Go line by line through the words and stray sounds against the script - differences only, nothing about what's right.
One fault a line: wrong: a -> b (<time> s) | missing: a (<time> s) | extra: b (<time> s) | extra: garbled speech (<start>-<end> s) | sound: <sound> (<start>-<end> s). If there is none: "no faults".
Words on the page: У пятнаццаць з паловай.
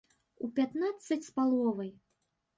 no faults